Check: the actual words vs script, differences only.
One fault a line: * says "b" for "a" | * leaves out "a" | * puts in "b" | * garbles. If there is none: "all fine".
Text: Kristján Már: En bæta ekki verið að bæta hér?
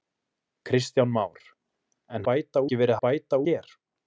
all fine